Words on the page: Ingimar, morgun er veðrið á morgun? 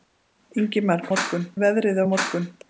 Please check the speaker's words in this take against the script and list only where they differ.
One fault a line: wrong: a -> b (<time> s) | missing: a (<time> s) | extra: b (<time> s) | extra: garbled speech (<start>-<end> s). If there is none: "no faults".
no faults